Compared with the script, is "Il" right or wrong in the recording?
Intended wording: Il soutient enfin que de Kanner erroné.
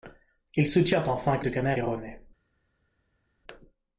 right